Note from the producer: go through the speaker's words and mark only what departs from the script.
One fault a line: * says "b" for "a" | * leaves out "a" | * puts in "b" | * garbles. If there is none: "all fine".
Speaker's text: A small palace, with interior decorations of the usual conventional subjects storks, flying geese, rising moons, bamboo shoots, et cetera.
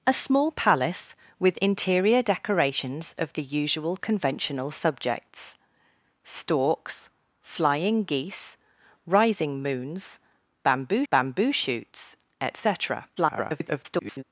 * puts in "bamboo"
* garbles